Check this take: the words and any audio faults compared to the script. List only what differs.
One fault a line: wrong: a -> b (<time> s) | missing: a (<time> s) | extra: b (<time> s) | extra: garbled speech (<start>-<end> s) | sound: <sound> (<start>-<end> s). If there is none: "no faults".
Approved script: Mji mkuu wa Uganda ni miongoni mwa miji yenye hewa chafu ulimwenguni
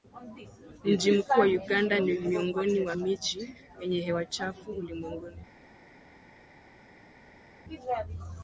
no faults